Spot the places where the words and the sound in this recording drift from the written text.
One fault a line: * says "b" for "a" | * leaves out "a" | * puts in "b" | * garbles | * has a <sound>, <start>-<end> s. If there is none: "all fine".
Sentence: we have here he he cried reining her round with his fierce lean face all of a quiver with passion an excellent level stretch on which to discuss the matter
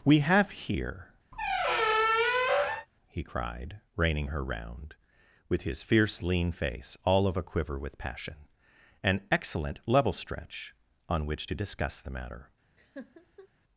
* has a squeak, 1.3-2.9 s
* leaves out "he"
* has a laugh, 12.8-13.5 s